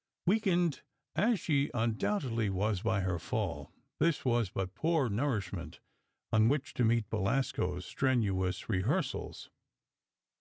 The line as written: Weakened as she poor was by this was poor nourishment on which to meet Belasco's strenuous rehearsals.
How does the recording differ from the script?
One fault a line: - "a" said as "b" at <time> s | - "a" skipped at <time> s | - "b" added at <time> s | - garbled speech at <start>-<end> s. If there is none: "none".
- "poor" said as "undoubtedly" at 1.8 s
- "her fall" added at 3.0 s
- "but" added at 4.5 s